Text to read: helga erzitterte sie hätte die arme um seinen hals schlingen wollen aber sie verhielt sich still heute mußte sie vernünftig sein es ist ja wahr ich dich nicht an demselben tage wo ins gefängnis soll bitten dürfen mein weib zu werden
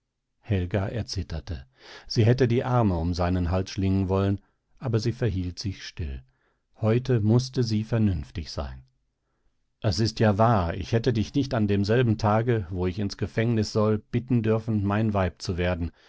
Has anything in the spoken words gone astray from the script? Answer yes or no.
yes